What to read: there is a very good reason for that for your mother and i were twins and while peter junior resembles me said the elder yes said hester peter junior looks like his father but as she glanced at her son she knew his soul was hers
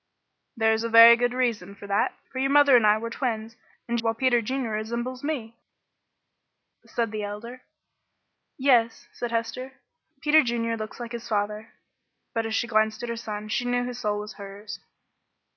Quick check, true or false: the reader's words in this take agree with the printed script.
true